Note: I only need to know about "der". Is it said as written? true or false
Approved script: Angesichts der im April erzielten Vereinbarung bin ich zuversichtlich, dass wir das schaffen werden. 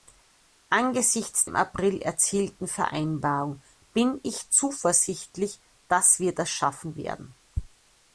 false